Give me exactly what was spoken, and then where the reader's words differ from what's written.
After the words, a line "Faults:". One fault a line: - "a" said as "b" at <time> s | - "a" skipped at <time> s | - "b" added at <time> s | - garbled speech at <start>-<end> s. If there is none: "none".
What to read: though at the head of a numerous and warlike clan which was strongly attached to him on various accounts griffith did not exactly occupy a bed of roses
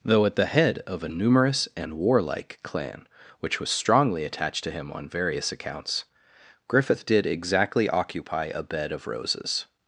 though at the head of a numerous and warlike clan which was strongly attached to him on various accounts griffith did exactly occupy a bed of roses
Faults:
- "not" skipped at 7.2 s